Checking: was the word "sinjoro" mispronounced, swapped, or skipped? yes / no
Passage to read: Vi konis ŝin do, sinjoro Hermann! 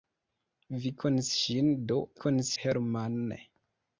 yes